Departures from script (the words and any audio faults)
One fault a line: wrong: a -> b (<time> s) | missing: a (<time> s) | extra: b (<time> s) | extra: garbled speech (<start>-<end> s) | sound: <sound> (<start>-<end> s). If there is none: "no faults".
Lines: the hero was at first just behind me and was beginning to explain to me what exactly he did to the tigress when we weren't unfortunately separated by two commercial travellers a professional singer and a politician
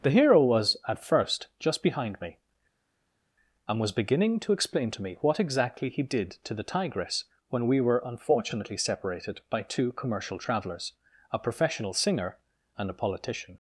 wrong: weren't -> were (7.8 s)